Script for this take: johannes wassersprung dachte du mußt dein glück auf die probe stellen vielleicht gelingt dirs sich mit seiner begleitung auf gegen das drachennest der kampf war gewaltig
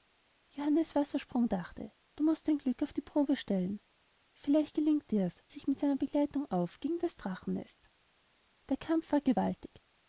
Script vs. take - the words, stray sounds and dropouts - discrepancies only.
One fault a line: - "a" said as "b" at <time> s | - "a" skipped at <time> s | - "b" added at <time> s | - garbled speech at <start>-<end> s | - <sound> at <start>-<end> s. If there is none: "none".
none